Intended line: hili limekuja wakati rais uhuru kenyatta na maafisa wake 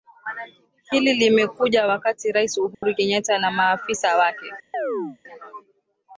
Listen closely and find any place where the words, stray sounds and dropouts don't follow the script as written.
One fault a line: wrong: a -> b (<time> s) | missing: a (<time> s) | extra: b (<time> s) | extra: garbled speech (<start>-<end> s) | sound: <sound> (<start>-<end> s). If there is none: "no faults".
sound: dropout (2.7-2.8 s)
sound: chirp (4.7-5.2 s)